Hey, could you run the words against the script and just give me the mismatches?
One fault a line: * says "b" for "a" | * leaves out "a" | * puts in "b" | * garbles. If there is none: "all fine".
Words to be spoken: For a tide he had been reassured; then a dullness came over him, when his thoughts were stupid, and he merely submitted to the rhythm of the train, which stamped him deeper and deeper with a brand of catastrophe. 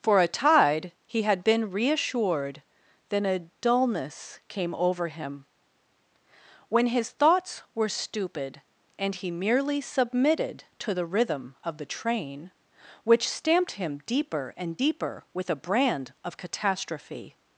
all fine